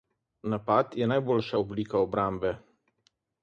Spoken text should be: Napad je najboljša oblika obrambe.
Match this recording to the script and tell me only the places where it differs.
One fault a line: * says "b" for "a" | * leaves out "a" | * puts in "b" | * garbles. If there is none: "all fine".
all fine